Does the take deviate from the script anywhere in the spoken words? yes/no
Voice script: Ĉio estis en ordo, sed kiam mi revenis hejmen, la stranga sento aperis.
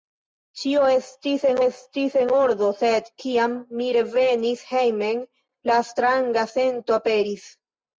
yes